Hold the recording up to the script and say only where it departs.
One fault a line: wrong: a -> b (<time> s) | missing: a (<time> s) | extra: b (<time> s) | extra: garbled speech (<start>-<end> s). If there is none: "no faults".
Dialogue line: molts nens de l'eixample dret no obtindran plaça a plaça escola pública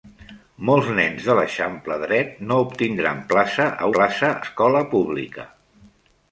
no faults